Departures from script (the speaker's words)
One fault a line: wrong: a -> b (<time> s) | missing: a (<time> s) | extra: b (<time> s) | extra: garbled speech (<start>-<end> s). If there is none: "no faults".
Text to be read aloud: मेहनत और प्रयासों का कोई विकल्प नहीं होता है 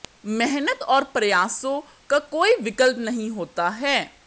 no faults